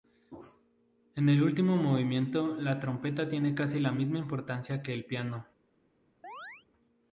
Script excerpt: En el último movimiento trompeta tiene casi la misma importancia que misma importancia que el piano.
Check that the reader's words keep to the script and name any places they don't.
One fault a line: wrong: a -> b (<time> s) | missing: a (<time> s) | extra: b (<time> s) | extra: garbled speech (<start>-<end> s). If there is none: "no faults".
extra: la (2.5 s)
missing: misma importancia que (4.9 s)